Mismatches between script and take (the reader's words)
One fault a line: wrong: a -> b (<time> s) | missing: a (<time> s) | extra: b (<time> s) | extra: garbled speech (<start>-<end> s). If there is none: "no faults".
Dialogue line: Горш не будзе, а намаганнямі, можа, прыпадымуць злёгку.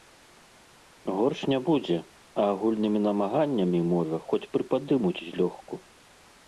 extra: агульнымі (2.5 s)
extra: хоць (4.3 s)